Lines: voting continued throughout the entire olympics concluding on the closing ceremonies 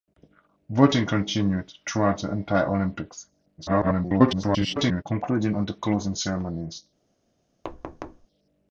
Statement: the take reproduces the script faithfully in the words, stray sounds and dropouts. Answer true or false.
false